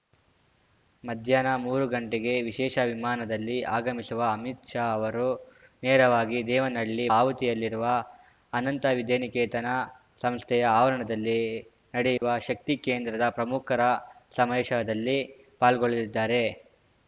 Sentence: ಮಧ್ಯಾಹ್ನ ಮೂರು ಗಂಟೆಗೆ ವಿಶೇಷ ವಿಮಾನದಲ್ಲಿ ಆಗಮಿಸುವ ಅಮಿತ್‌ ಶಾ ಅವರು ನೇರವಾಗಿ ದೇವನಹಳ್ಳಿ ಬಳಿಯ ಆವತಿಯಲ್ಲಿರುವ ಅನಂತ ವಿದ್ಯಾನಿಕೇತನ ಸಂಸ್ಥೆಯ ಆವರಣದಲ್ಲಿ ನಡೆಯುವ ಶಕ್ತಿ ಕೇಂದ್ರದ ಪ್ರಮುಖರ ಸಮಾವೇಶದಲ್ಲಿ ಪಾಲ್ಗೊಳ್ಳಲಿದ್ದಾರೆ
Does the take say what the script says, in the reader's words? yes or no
no